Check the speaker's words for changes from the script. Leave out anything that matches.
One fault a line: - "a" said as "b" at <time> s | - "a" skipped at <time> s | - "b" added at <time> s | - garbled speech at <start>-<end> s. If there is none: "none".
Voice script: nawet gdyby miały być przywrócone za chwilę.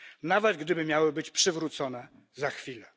none